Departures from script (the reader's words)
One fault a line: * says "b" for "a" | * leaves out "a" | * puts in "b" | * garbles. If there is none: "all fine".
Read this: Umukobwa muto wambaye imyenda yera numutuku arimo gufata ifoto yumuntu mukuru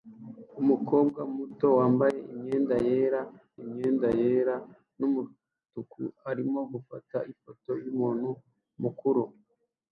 * puts in "imyenda yera"